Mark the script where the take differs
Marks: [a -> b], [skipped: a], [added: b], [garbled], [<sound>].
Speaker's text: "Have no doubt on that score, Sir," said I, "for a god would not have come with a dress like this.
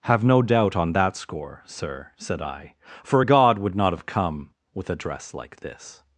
"Have no doubt on that score, Sir," said I, "for a god would not have come with a dress like this.